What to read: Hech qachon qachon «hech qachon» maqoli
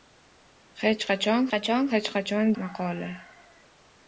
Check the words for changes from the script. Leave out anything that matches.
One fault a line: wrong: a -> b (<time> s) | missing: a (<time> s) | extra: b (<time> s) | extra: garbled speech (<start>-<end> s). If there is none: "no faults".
no faults